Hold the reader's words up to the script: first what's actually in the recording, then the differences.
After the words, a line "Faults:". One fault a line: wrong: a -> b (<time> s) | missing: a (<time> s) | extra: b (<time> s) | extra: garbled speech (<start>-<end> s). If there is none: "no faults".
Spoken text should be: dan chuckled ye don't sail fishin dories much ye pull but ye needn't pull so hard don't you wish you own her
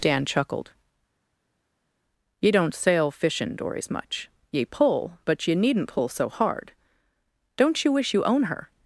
dan chuckled ye don't sail fishin dories much ye pull but ye needn't pull so hard don't you wish you own her
Faults:
no faults